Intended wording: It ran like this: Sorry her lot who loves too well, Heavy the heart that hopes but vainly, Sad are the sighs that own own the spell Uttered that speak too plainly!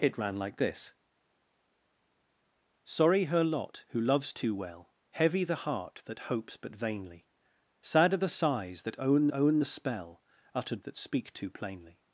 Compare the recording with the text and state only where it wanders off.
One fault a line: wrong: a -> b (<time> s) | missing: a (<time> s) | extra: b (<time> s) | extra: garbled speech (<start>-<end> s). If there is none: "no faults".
no faults